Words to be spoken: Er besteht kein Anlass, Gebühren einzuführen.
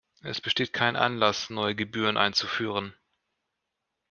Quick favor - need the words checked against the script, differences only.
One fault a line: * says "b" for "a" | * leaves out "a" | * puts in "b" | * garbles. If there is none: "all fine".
* says "Es" for "Er"
* puts in "neue"